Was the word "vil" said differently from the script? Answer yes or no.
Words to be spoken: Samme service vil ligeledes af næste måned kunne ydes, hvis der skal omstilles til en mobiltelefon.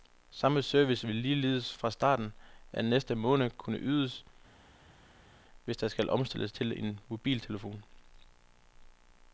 no